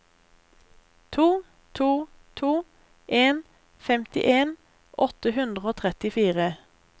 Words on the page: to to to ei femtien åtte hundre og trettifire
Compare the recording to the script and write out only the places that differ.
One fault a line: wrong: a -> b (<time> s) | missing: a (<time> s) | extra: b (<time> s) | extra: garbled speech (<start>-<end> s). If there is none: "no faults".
wrong: ei -> en (3.1 s)